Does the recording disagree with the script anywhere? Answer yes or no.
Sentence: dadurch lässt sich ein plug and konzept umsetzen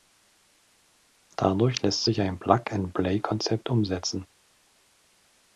yes